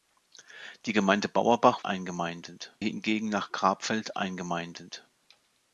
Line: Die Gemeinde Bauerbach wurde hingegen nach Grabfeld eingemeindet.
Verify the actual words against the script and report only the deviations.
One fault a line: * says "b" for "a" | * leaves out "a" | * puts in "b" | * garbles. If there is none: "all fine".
* says "eingemeindet" for "wurde"